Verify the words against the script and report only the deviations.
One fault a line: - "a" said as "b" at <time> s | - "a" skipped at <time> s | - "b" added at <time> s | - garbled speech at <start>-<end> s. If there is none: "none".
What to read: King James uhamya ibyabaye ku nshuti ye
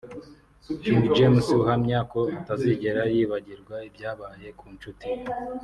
- "ko atazigera yibagirwa" added at 2.1 s